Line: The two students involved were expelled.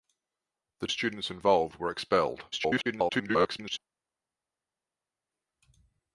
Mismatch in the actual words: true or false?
true